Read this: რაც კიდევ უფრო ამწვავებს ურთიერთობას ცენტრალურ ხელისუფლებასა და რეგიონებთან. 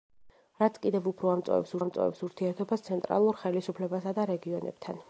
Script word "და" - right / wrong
right